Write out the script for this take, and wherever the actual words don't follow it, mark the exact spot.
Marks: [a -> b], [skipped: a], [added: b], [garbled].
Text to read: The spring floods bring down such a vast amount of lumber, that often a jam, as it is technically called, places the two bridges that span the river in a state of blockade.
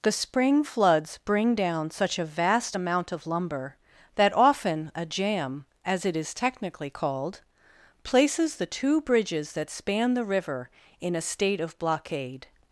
The spring floods bring down such a vast amount of lumber, that often a jam, as it is technically called, places the two bridges that span the river in a state of blockade.